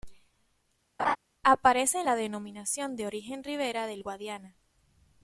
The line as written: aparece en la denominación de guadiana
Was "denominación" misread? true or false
false